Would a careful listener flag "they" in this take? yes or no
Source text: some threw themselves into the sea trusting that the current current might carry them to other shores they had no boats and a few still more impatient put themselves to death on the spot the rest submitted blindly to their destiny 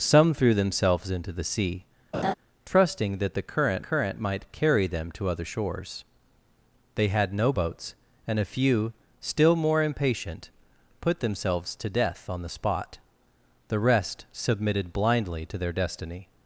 no